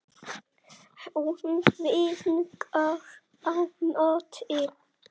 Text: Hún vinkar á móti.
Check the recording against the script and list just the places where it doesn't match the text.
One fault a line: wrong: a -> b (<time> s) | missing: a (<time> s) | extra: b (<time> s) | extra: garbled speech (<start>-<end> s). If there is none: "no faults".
no faults